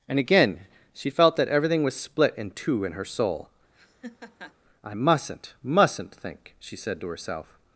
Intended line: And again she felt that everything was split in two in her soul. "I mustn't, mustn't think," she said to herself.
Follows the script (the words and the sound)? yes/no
no